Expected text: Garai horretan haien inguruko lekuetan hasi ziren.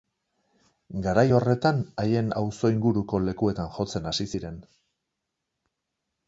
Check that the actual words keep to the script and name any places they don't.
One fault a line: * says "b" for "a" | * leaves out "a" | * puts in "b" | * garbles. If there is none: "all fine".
* puts in "auzo"
* puts in "jotzen"